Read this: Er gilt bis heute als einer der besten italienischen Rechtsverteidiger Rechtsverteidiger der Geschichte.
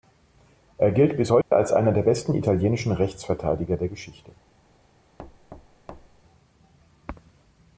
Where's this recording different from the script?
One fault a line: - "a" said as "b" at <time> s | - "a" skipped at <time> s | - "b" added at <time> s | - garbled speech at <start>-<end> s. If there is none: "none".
- "Rechtsverteidiger" skipped at 3.8 s